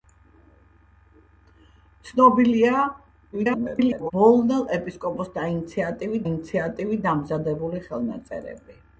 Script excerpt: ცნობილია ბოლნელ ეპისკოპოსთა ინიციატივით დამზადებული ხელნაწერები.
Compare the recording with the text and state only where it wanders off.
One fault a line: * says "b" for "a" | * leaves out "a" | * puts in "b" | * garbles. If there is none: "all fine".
* garbles
* puts in "ინიციატივით"